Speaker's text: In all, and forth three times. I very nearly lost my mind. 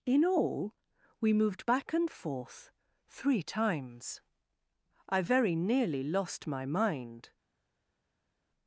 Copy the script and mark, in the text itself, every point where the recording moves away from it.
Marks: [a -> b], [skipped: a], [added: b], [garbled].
In all, [added: we moved back] and forth three times. I very nearly lost my mind.